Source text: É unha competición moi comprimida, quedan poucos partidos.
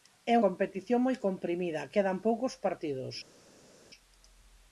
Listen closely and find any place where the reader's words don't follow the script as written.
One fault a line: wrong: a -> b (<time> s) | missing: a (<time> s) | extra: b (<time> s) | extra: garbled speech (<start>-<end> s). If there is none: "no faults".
missing: unha (0.3 s)